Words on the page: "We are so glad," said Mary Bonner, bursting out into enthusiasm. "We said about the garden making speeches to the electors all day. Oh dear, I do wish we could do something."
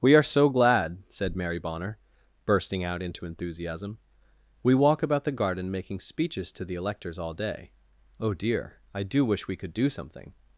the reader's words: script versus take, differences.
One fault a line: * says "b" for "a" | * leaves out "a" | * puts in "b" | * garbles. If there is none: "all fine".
* says "walk" for "said"